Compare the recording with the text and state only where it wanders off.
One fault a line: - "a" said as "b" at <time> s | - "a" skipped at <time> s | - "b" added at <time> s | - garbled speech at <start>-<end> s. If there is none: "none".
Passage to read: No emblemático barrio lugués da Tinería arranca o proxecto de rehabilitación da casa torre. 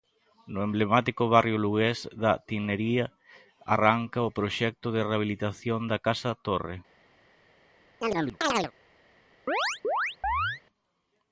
none